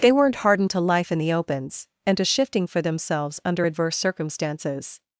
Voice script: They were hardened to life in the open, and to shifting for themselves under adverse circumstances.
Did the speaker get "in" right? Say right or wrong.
right